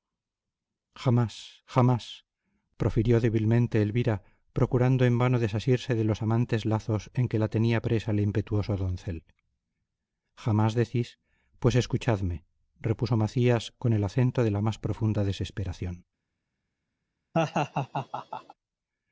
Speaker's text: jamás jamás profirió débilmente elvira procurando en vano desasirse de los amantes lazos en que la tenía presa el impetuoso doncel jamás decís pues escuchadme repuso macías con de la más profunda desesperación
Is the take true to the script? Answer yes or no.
no